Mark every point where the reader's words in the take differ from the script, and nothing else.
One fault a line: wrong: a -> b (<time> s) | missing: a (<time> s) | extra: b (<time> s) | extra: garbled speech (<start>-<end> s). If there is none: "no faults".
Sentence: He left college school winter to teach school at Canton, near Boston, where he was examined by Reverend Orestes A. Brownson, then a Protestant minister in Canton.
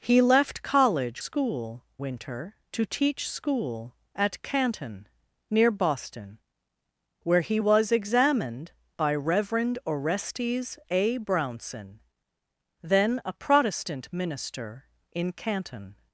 no faults